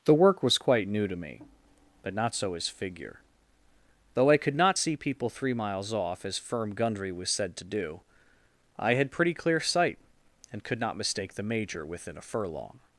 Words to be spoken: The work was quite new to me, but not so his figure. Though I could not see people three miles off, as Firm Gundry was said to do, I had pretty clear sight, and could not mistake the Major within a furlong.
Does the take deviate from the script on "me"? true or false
false